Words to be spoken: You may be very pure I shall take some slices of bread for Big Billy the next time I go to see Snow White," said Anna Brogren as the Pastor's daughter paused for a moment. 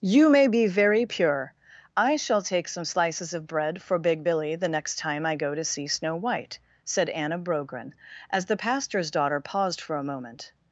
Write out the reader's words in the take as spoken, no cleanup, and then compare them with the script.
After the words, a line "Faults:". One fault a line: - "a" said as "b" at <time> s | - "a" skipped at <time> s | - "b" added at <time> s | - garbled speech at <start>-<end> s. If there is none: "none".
You may be very pure I shall take some slices of bread for Big Billy the next time I go to see Snow White," said Anna Brogren as the Pastor's daughter paused for a moment.
Faults:
none